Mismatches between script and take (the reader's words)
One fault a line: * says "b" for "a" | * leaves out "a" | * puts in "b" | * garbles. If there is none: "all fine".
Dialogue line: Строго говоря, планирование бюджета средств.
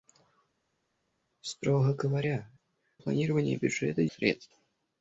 all fine